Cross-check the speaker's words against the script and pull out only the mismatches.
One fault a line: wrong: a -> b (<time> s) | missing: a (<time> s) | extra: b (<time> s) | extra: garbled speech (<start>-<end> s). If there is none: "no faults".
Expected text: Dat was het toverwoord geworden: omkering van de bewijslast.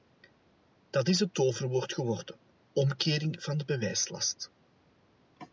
wrong: was -> is (1.1 s)